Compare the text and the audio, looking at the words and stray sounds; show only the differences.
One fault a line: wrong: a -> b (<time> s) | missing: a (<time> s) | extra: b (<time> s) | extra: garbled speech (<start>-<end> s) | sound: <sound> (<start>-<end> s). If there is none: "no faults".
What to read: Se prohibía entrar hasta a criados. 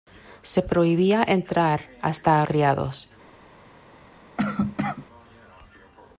sound: cough (4.4-5.1 s)